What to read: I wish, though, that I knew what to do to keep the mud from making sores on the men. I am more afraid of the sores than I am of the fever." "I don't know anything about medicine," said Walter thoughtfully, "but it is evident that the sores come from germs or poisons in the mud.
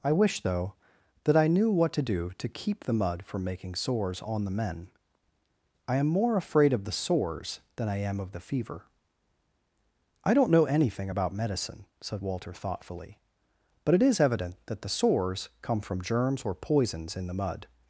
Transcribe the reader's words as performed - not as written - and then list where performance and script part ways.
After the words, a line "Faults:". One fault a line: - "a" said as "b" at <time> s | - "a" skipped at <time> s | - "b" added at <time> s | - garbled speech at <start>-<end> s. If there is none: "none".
I wish, though, that I knew what to do to keep the mud from making sores on the men. I am more afraid of the sores than I am of the fever." "I don't know anything about medicine," said Walter thoughtfully, "but it is evident that the sores come from germs or poisons in the mud.
Faults:
none